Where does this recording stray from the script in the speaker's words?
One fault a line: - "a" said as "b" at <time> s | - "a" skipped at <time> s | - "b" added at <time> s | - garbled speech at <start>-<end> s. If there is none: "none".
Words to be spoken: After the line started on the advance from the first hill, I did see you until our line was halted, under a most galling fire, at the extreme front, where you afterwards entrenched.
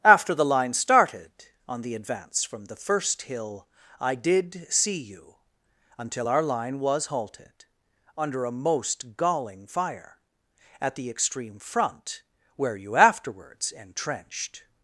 none